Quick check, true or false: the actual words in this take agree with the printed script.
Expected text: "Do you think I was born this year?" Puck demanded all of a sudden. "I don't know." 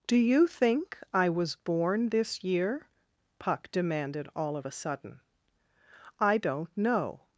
true